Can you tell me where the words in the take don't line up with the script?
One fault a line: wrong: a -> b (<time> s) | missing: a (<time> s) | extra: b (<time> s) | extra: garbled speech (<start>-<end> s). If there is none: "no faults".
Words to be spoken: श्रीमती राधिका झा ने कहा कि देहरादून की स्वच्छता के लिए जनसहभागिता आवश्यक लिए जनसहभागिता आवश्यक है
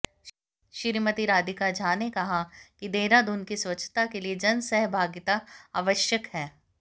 missing: लिए जनसहभागिता आवश्यक (6.3 s)